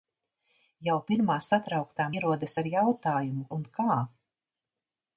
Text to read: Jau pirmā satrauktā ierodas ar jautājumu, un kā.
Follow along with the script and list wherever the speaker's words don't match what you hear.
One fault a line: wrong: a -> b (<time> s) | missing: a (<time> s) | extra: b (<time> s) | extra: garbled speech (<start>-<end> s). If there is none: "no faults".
no faults